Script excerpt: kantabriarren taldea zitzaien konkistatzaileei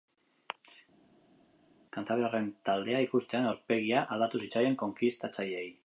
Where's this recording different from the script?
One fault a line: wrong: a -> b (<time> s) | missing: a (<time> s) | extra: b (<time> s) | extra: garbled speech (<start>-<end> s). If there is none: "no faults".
extra: ikustean aurpegia aldatu (3.1 s)